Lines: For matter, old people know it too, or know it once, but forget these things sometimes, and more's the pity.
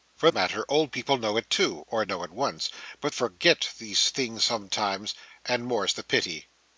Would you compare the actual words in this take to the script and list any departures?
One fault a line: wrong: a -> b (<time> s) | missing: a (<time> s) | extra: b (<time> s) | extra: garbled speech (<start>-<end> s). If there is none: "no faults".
no faults